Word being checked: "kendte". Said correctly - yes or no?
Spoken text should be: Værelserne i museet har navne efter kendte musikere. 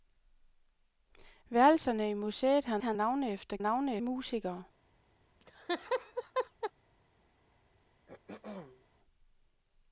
no